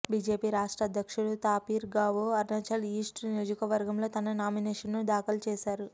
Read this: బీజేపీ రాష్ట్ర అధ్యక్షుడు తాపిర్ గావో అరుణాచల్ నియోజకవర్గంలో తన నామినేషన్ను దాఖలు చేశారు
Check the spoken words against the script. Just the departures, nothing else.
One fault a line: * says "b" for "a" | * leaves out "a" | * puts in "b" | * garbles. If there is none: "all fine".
* puts in "ఈస్ట్"